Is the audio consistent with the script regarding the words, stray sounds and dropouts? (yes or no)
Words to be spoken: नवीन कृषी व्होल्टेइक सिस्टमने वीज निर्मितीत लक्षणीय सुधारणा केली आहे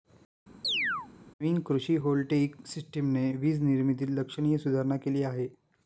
no